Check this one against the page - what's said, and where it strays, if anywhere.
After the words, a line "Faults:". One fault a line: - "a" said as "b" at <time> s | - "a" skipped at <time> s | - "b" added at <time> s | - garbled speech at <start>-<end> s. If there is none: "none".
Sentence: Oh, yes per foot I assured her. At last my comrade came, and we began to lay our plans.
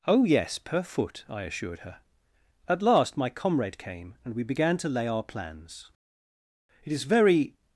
Oh, yes per foot I assured her. At last my comrade came, and we began to lay our plans. It is very
Faults:
- "It is very" added at 6.8 s